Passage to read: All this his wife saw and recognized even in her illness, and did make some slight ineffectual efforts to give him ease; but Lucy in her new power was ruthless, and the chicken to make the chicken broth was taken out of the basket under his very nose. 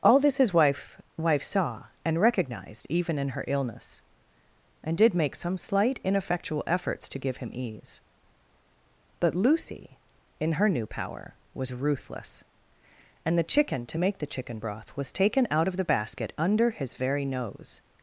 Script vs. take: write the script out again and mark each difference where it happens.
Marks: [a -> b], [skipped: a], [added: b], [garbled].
All this his wife [added: wife] saw and recognized even in her illness, and did make some slight ineffectual efforts to give him ease; but Lucy in her new power was ruthless, and the chicken to make the chicken broth was taken out of the basket under his very nose.